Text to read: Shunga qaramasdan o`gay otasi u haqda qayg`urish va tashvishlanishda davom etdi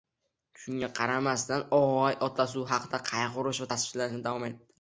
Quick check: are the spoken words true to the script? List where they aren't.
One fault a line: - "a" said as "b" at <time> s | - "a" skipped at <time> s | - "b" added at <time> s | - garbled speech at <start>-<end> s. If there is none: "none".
none